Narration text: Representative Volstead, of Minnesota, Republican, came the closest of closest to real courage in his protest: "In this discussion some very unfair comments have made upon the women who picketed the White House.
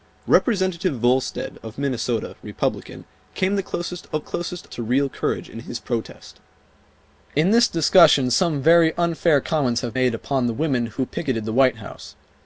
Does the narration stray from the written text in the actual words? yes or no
no